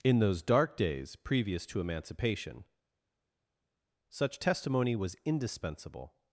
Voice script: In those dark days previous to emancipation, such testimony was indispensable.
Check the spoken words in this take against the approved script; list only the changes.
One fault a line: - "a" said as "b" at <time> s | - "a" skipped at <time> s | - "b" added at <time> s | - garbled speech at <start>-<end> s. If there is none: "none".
none